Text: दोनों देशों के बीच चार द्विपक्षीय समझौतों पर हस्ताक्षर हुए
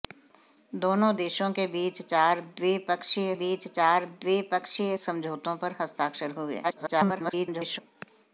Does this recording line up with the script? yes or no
no